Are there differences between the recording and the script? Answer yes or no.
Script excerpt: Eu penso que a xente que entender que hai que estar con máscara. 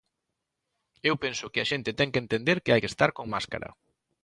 yes